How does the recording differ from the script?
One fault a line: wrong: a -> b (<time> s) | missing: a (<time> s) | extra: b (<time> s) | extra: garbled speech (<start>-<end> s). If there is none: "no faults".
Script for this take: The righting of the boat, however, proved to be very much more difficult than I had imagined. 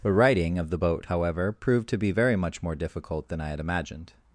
no faults